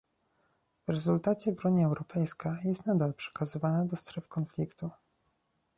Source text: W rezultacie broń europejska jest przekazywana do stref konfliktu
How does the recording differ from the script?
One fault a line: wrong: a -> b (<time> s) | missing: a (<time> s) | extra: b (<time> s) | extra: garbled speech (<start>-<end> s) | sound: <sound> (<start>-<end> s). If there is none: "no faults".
extra: nadal (2.9 s)